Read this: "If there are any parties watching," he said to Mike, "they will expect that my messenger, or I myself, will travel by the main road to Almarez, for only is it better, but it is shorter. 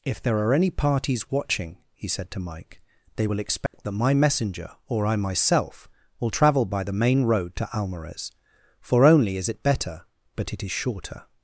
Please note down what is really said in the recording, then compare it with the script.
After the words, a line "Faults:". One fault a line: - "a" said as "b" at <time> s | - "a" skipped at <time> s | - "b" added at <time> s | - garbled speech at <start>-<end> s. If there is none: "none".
"If there are any parties watching," he said to Mike, "they will expect that my messenger, or I myself, will travel by the main road to Almarez, for only is it better, but it is shorter.
Faults:
none